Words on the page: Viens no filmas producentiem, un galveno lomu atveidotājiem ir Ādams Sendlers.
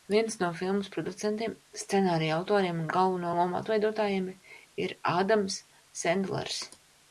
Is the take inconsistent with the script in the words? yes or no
yes